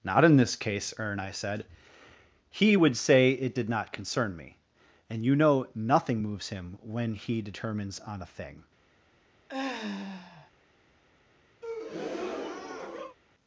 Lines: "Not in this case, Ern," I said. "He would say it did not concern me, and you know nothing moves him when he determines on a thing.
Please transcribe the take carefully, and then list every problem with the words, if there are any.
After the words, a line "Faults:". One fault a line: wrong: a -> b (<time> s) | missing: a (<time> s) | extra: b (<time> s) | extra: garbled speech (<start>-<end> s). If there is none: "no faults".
"Not in this case, Ern," I said. "He would say it did not concern me, and you know nothing moves him when he determines on a thing.
Faults:
no faults